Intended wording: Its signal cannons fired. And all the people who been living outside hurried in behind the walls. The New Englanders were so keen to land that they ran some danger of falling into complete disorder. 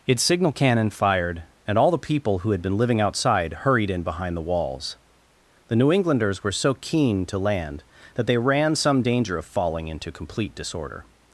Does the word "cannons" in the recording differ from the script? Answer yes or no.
yes